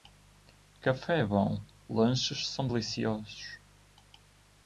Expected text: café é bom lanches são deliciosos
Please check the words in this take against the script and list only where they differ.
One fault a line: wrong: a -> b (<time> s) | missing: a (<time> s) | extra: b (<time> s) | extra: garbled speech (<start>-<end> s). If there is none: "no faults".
no faults